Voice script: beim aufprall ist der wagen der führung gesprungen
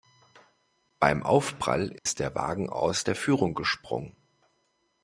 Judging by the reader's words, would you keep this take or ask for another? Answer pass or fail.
fail